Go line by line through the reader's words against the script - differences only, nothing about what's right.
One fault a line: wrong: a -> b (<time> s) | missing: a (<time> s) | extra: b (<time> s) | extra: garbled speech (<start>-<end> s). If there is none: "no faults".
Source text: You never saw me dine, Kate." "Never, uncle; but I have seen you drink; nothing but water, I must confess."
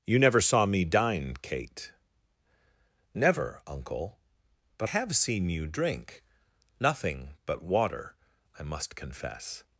missing: I (4.9 s)